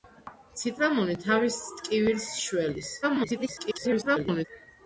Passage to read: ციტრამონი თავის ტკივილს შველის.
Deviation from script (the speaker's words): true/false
true